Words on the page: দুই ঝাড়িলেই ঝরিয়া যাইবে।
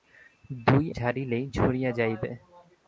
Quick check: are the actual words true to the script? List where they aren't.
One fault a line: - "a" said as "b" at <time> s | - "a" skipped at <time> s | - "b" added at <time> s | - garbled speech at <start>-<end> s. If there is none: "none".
none